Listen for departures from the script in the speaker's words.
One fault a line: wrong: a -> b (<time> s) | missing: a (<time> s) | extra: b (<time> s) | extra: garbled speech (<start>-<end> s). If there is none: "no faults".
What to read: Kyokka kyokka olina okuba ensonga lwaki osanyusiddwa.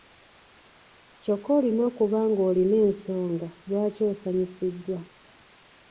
missing: kyokka (1.5 s)
extra: ng'olina (2.3 s)